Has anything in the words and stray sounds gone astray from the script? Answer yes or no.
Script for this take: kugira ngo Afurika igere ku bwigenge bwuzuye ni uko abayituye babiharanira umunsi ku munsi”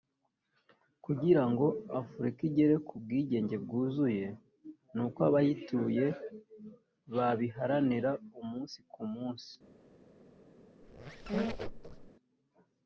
yes